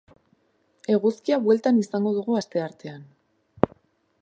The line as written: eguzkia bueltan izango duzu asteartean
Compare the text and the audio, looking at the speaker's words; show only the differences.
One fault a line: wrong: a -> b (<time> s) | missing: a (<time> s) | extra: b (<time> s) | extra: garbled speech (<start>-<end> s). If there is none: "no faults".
wrong: duzu -> dugu (2.2 s)